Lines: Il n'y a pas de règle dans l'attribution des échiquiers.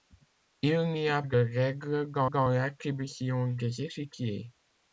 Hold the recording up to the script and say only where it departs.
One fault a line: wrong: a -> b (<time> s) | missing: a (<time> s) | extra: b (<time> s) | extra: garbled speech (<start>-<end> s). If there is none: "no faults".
missing: pas (1.2 s)
extra: dans (2.3 s)